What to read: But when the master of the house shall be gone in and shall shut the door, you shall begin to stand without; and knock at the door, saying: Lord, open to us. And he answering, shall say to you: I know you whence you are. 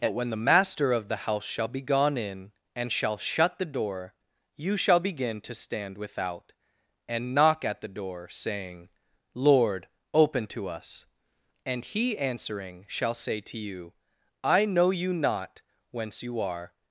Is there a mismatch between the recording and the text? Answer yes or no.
yes